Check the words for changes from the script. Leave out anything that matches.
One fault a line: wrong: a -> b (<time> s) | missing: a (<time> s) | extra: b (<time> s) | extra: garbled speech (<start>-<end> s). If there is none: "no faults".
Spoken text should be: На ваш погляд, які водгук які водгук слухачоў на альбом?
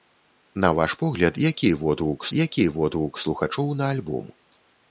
no faults